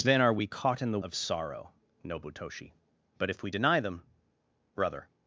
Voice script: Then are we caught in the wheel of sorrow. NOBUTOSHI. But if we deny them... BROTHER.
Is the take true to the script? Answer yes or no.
no